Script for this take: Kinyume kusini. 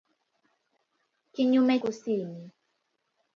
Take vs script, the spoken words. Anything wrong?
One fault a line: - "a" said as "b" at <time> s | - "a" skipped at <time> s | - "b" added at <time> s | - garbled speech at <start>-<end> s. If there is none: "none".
none